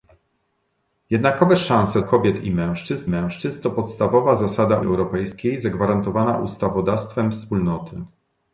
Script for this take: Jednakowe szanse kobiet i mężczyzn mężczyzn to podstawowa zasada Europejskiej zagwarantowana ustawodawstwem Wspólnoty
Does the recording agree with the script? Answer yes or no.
yes